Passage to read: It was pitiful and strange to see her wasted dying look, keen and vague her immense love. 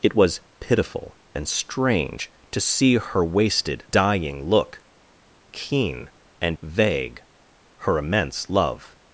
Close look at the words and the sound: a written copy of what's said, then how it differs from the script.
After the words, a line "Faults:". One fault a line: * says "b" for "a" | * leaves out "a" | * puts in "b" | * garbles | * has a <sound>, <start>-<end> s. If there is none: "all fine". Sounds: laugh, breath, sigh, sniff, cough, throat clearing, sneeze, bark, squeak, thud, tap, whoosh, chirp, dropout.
It was pitiful and strange to see her wasted dying look, keen and vague her immense love.
Faults:
all fine